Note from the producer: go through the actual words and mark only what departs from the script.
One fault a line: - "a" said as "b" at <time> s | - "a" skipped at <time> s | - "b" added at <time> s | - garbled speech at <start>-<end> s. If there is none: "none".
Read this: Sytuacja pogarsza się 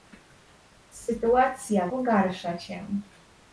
none